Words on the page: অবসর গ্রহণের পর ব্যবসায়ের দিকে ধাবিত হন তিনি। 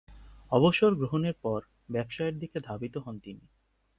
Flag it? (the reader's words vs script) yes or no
no